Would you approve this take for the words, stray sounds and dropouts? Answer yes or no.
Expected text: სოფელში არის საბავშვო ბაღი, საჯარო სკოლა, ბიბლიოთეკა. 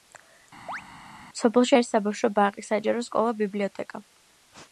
no